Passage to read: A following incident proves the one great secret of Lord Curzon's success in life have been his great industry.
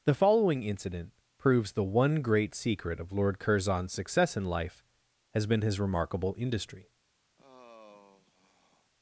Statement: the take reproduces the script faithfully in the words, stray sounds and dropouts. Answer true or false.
false